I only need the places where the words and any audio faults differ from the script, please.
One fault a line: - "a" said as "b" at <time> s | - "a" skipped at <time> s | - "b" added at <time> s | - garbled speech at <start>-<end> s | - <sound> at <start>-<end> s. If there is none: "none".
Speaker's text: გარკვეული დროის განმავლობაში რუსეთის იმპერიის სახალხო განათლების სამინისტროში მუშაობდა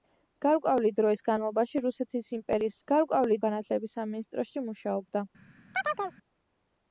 - "სახალხო" said as "გარკვეული" at 2.9 s
- chirp at 5.7-6.2 s